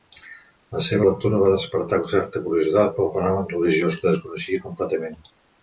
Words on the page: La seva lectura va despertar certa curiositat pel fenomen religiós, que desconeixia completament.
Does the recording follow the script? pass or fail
pass